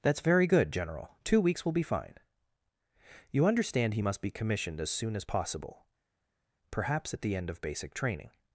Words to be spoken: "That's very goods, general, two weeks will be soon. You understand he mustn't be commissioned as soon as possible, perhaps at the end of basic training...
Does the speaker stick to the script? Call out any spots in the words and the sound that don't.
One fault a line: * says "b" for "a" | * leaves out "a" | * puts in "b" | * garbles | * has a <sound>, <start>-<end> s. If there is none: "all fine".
* says "good" for "goods"
* says "fine" for "soon"
* says "must" for "mustn't"